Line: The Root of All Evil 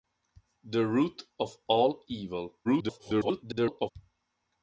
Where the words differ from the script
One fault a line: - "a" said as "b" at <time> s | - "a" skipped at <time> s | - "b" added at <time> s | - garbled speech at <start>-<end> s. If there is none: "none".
- garbled speech at 2.6-3.9 s